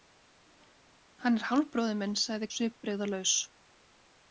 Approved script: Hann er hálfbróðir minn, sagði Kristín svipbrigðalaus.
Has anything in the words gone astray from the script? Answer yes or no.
yes